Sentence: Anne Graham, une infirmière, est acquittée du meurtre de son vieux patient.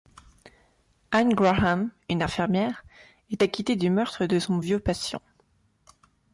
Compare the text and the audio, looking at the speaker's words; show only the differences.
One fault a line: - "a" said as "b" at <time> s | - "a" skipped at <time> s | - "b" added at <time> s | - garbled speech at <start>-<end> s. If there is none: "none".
none